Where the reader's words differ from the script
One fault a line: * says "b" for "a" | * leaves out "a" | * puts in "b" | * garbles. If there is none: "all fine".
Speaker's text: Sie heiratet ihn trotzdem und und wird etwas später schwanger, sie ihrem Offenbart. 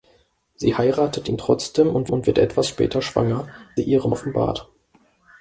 all fine